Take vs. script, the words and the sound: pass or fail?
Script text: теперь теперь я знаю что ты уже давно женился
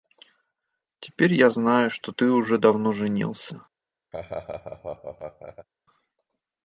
fail